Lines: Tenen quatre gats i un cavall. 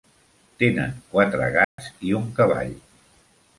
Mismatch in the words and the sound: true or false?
true